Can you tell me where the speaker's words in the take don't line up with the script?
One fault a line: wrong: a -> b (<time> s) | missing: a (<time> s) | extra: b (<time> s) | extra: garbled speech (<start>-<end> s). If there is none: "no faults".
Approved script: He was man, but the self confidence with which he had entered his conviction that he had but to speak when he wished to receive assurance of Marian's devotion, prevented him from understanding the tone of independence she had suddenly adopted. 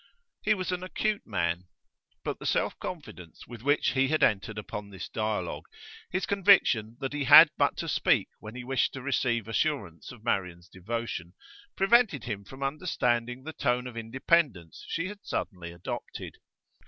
extra: an acute (0.7 s)
extra: upon this dialogue (4.6 s)